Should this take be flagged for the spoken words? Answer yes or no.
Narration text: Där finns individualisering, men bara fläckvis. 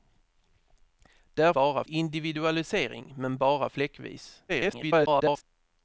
yes